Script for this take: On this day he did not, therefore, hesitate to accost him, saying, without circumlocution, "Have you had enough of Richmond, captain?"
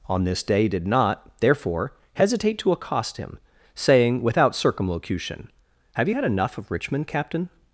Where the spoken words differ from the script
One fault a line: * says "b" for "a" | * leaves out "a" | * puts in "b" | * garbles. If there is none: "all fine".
* leaves out "he"